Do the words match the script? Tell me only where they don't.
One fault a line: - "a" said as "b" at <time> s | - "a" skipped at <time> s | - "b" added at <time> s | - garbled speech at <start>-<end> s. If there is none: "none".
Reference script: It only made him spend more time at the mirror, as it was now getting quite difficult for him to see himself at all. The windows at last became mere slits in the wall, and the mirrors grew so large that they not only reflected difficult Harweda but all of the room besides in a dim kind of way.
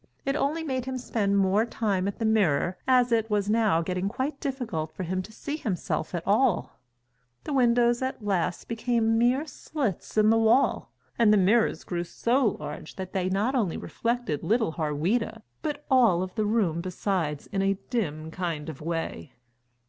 - "difficult" said as "little" at 14.4 s